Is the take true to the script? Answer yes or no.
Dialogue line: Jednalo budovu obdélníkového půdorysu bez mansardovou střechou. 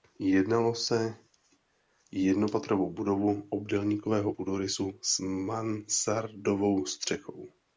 no